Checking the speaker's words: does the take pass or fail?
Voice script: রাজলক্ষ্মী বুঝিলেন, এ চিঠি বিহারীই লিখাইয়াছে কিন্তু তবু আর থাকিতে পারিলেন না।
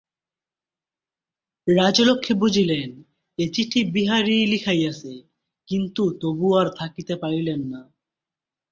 pass